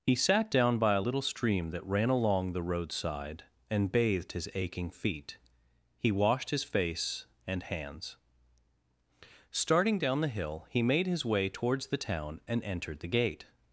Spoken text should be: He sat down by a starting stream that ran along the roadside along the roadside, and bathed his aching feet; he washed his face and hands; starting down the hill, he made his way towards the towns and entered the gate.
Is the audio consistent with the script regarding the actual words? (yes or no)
no